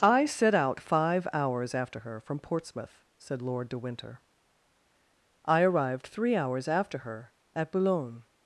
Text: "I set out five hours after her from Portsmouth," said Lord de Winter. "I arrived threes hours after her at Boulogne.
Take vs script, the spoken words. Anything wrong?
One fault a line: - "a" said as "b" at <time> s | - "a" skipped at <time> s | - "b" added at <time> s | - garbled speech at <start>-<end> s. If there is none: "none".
- "threes" said as "three" at 6.1 s